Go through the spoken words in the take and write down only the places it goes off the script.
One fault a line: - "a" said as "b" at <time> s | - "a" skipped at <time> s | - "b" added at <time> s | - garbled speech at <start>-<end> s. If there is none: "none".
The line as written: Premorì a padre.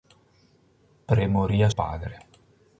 none